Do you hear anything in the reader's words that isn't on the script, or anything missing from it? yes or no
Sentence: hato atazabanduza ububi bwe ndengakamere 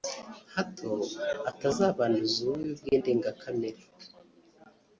no